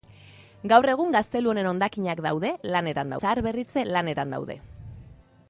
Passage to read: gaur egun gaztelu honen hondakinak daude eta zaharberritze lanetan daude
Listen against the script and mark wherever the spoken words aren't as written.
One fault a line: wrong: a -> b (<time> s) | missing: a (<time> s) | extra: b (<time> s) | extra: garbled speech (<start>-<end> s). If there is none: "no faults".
wrong: eta -> lanetan (2.7 s)